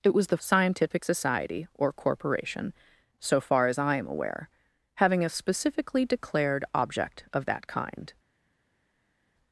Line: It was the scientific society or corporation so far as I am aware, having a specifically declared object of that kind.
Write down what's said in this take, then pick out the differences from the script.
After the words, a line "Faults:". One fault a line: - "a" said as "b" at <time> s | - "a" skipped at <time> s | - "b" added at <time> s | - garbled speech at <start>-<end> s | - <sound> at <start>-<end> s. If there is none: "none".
It was the scientific society or corporation so far as I am aware, having a specifically declared object of that kind.
Faults:
none